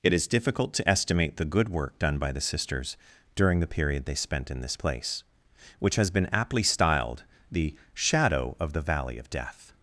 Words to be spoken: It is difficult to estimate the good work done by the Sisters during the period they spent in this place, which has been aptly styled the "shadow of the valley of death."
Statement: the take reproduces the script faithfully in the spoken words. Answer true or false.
true